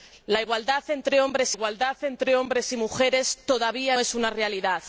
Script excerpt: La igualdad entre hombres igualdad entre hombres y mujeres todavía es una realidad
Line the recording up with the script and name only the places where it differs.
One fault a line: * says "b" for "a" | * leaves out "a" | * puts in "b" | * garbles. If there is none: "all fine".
all fine